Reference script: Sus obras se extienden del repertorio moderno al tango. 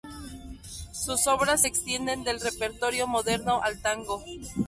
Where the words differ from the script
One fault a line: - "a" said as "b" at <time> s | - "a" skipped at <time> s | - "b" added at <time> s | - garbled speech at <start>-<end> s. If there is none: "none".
none